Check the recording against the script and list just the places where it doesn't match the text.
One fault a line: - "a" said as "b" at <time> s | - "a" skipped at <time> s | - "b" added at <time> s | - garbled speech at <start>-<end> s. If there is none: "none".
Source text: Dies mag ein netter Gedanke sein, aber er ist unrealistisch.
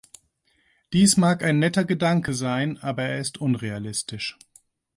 none